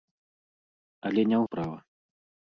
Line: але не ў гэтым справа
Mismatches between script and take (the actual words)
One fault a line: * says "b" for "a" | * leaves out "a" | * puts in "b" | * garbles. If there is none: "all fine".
* leaves out "гэтым"